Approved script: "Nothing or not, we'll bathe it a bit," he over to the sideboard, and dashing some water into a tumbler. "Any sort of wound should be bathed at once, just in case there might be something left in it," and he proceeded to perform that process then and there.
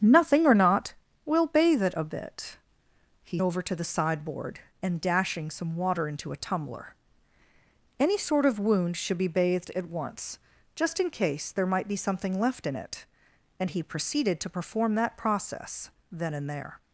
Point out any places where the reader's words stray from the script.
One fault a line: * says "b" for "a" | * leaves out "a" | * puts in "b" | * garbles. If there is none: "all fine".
all fine